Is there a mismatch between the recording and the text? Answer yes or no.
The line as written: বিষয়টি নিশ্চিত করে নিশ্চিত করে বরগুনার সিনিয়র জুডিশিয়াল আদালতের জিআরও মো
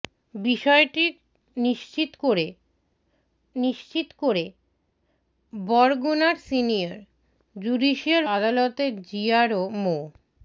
no